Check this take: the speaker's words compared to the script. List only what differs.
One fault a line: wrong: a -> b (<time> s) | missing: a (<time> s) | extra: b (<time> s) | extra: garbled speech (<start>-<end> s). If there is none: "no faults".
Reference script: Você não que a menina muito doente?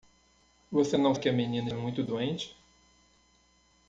no faults